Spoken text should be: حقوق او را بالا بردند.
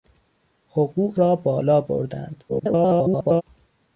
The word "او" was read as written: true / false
false